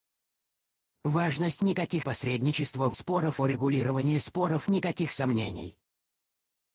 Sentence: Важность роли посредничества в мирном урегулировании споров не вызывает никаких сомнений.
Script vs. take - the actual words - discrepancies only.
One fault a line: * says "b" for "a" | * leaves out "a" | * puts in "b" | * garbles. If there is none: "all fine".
* says "никаких" for "роли"
* says "споров" for "мирном"
* leaves out "не вызывает"